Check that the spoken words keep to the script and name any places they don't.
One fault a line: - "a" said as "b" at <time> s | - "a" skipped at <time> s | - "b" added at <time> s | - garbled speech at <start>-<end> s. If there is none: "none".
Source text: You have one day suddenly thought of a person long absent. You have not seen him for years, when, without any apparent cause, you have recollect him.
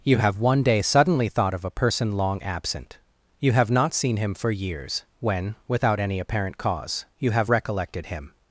- "recollect" said as "recollected" at 7.5 s